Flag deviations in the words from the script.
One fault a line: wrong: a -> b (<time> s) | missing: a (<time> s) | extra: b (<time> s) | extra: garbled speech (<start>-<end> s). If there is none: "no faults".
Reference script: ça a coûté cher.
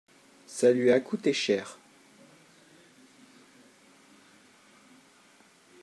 extra: lui (0.7 s)